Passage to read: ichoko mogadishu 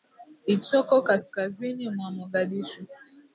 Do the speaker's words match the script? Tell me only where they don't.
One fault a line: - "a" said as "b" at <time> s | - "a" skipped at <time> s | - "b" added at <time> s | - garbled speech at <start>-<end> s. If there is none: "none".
- "kaskazini mwa" added at 1.0 s